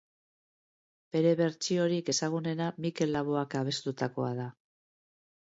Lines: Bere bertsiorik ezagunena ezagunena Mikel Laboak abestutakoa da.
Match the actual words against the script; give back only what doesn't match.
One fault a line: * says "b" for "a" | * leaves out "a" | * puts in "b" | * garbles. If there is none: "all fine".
* leaves out "ezagunena"